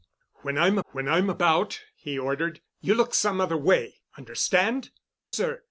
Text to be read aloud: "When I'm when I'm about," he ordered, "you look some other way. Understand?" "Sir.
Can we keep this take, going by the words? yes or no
yes